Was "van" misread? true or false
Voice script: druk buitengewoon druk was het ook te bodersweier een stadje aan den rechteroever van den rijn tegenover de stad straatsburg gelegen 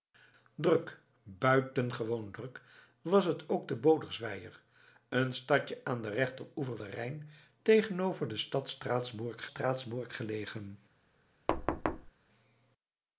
true